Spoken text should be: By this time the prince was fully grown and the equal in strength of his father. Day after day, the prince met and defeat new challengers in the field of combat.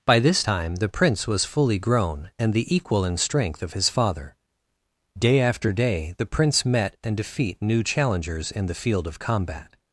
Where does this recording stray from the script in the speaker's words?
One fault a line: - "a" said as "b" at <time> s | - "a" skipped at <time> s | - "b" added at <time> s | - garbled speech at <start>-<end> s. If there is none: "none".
none